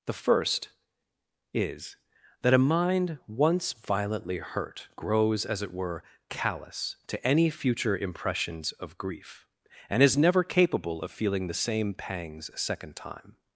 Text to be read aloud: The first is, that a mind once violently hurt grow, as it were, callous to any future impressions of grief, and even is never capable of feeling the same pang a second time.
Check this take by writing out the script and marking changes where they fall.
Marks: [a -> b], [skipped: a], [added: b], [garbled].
The first is, that a mind once violently hurt [grow, -> grows] as it were, callous to any future impressions of grief, and [skipped: even] is never capable of feeling the same [pang -> pangs] a second time.